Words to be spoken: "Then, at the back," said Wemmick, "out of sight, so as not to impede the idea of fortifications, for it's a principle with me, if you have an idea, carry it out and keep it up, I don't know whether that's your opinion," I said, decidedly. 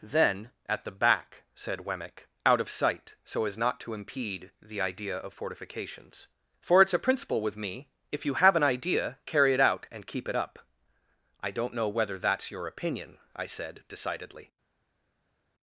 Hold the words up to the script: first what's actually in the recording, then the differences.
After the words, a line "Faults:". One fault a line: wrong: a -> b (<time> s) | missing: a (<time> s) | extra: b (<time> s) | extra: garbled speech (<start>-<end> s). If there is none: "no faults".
"Then, at the back," said Wemmick, "out of sight, so as not to impede the idea of fortifications, for it's a principle with me, if you have an idea, carry it out and keep it up, I don't know whether that's your opinion," I said, decidedly.
Faults:
no faults